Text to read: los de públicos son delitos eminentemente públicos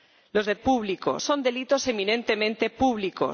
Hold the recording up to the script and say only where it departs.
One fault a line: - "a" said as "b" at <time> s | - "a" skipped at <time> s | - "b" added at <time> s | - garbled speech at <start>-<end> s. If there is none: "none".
none